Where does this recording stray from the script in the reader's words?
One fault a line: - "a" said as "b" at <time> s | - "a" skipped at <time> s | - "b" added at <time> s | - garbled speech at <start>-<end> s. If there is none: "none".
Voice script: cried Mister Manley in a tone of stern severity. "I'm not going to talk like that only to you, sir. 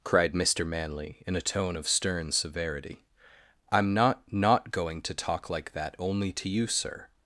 - "not" added at 4.3 s